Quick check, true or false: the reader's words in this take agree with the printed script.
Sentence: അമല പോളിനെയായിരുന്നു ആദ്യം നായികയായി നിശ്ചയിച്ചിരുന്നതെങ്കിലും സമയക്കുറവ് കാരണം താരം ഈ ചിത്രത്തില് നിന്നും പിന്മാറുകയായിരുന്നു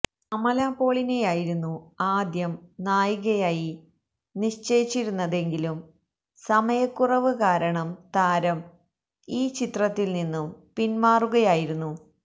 true